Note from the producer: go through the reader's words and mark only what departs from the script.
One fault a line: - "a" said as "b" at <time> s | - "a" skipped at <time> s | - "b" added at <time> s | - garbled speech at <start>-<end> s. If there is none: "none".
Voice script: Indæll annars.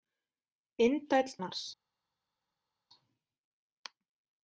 none